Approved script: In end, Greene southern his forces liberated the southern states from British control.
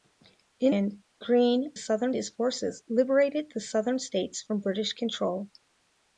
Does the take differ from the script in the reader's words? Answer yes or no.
no